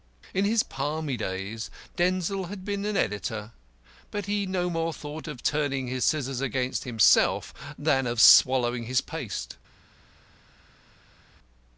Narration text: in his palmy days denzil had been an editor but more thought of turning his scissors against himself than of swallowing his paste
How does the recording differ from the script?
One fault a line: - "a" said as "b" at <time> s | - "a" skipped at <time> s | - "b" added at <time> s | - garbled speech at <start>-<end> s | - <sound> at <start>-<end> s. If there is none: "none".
- "he no" added at 4.2 s